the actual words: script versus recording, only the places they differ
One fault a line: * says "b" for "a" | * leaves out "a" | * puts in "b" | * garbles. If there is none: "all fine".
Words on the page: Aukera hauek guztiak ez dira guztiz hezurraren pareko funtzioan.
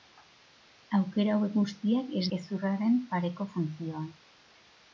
* leaves out "dira guztiz"